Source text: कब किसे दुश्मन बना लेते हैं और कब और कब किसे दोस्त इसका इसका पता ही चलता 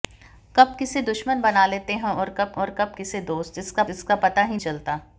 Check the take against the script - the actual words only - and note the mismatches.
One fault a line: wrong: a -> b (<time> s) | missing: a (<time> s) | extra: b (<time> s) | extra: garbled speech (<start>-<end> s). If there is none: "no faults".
no faults